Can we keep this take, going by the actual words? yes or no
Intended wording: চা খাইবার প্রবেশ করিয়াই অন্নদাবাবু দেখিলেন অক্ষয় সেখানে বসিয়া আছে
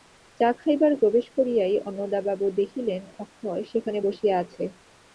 yes